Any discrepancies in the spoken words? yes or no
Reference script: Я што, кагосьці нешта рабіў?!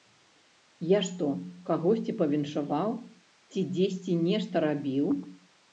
yes